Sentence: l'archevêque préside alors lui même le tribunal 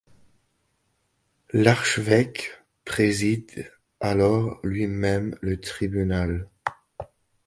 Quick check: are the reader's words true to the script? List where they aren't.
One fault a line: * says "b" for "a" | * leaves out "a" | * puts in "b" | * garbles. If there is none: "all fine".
all fine